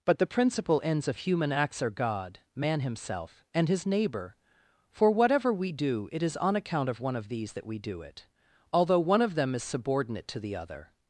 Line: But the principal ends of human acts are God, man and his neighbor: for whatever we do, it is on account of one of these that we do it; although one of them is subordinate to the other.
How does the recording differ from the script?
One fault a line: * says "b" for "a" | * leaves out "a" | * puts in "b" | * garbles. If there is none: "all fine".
* puts in "himself"